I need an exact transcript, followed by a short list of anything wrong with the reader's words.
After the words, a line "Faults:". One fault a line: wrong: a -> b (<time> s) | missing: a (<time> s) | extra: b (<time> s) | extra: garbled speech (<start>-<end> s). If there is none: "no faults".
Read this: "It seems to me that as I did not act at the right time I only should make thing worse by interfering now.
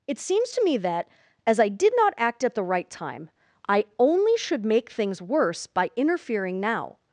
"It seems to me that as I did not act at the right time I only should make things worse by interfering now.
Faults:
wrong: thing -> things (4.9 s)